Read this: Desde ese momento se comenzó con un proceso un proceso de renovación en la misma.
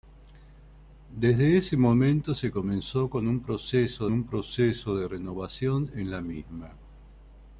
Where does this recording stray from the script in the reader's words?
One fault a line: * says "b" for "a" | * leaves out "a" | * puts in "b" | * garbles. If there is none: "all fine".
all fine